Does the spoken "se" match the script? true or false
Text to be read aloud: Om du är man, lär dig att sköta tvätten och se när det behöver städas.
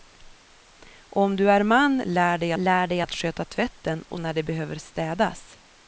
false